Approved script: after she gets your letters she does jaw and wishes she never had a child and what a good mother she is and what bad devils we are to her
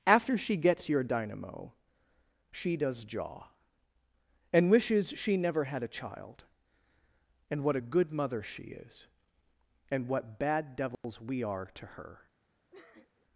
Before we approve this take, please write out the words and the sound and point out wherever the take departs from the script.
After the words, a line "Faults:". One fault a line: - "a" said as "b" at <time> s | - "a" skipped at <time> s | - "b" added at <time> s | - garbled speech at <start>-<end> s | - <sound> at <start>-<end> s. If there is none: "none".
after she gets your dynamo she does jaw and wishes she never had a child and what a good mother she is and what bad devils we are to her
Faults:
- "letters" said as "dynamo" at 1.0 s
- dropout at 10.9-11.0 s
- sniff at 12.7-13.3 s